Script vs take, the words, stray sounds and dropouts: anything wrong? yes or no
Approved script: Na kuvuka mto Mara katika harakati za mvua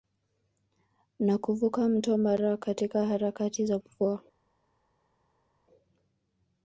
no